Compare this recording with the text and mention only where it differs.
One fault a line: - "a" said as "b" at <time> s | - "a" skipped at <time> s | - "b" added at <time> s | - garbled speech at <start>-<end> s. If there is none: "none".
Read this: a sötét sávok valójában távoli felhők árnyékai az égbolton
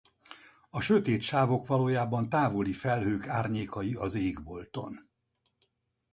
none